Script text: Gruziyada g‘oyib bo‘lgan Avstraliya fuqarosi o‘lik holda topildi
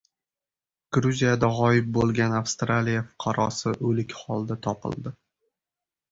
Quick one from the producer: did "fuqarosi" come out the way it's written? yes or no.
yes